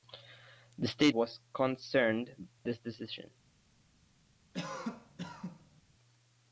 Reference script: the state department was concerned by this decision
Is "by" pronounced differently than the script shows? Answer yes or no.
yes